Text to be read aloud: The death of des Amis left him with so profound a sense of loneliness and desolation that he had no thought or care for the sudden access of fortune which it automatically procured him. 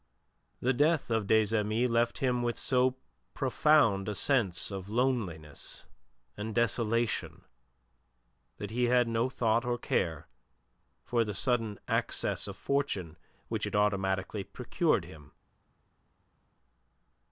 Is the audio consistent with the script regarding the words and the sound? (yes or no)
yes